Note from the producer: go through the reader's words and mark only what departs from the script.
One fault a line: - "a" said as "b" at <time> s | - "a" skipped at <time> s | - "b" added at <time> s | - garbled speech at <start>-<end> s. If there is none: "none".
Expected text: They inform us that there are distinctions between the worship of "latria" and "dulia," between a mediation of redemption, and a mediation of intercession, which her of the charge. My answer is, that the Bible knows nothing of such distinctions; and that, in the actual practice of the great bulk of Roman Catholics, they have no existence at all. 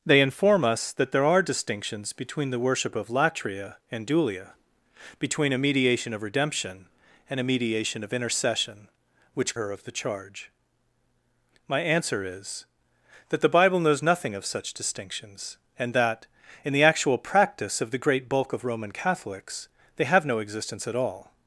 none